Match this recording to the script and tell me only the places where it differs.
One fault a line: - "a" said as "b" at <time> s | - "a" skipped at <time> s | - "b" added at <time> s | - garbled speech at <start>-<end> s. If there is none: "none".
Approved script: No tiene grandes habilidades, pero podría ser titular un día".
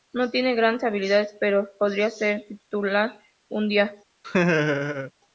none